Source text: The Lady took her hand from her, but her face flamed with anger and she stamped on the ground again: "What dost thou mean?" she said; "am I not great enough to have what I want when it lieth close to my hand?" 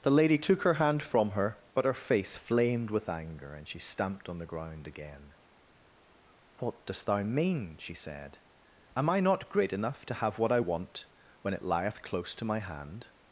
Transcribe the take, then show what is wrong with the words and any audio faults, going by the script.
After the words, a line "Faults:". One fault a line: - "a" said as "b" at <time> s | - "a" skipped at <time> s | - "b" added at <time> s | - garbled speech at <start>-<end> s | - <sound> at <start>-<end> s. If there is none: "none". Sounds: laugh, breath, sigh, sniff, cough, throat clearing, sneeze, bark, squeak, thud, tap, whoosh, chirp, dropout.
The Lady took her hand from her, but her face flamed with anger and she stamped on the ground again: "What dost thou mean?" she said; "am I not great enough to have what I want when it lieth close to my hand?"
Faults:
none